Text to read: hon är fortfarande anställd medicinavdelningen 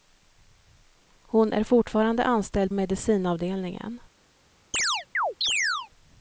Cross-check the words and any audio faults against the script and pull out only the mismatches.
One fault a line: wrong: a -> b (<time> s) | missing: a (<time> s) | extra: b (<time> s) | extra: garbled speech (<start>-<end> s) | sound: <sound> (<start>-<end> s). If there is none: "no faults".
sound: chirp (4.7-5.9 s)